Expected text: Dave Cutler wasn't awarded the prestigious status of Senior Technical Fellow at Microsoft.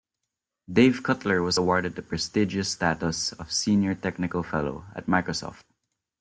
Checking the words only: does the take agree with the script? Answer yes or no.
no